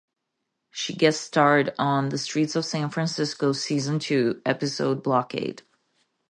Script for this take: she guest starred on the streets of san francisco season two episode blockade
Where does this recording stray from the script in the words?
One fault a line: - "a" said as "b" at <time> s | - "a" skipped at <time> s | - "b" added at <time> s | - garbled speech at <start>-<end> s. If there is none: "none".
none